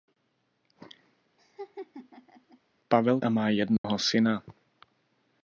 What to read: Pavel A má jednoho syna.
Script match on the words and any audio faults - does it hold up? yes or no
no